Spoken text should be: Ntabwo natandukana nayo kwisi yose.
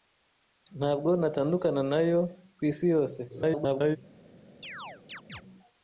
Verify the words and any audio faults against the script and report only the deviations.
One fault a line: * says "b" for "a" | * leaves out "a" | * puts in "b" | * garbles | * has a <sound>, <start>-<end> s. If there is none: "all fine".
* garbles
* has a chirp, 4.6-5.4 s